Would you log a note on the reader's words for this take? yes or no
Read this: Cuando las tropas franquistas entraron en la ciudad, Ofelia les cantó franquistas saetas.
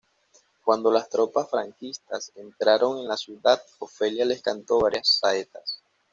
yes